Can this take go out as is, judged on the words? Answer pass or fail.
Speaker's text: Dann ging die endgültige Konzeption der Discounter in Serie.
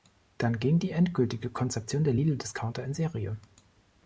fail